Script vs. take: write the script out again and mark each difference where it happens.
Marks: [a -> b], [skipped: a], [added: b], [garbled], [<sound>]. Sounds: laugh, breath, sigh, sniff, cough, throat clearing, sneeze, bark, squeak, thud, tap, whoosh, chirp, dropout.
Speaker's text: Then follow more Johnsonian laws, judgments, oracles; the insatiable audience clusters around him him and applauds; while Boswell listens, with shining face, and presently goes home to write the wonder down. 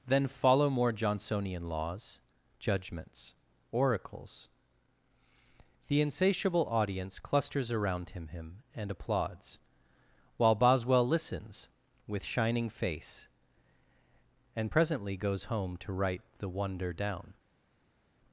Then follow more Johnsonian laws, judgments, oracles; the insatiable audience clusters around him him and applauds; while Boswell listens, with shining face, and presently goes home to write the wonder down.